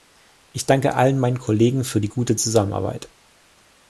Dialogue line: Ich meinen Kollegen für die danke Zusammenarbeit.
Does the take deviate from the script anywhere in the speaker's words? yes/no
yes